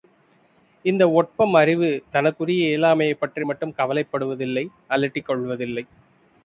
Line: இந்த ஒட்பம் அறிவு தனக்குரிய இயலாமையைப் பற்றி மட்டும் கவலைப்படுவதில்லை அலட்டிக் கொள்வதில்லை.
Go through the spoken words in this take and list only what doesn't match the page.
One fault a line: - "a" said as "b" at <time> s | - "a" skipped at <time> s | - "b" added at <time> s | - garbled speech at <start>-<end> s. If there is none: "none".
none